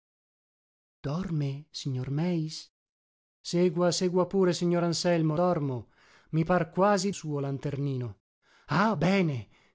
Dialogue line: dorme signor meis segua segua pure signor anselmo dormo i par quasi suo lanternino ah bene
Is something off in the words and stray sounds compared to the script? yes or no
no